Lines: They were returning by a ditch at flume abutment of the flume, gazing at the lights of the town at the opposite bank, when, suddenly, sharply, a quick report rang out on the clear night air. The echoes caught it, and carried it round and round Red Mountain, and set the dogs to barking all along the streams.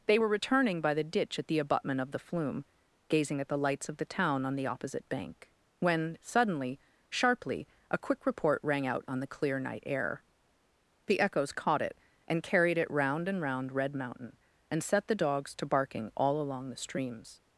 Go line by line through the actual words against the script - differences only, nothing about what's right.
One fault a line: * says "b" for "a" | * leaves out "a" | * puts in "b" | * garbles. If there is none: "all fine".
* says "the" for "a"
* says "the" for "flume"
* says "on" for "at"